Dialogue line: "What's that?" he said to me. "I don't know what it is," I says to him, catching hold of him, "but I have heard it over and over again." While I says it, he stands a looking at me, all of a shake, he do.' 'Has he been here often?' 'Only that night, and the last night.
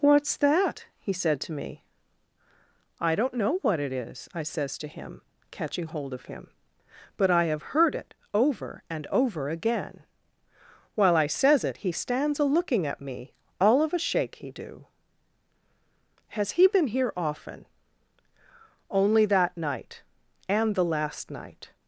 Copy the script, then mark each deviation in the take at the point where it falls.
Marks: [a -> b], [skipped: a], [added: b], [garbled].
"What's that?" he said to me. "I don't know what it is," I says to him, catching hold of him, "but I have heard it over and over again." While I says it, he stands a looking at me, all of a shake, he do.' 'Has he been here often?' 'Only that night, and the last night.